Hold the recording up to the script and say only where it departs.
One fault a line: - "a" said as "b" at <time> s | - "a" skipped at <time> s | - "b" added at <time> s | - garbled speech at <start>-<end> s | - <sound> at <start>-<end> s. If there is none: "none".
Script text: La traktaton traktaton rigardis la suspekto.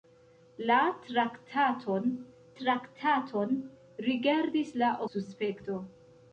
none